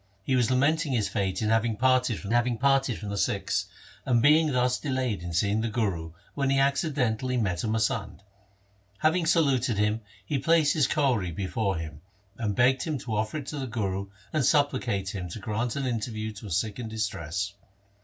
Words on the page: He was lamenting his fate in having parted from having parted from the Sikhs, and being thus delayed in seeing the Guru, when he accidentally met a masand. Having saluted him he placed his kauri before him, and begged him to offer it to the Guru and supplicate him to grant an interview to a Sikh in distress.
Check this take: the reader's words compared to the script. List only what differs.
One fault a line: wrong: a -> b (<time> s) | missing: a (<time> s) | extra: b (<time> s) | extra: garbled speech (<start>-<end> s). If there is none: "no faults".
no faults